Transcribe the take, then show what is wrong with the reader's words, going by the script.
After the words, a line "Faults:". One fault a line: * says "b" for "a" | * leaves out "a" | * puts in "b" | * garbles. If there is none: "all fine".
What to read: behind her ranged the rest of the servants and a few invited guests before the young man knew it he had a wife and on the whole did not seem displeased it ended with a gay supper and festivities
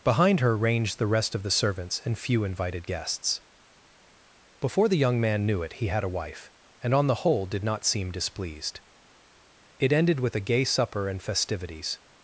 behind her ranged the rest of the servants and few invited guests before the young man knew it he had a wife and on the whole did not seem displeased it ended with a gay supper and festivities
Faults:
* leaves out "a"